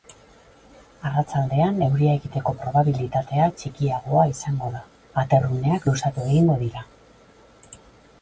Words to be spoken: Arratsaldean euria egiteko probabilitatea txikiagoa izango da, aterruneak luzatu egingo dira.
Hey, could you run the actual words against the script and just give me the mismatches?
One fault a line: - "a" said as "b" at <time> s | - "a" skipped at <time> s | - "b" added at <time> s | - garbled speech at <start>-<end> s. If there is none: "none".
none